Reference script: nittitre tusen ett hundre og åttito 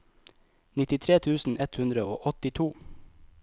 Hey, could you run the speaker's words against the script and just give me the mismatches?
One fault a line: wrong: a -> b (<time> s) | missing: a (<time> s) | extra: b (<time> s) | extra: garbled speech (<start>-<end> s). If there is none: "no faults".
no faults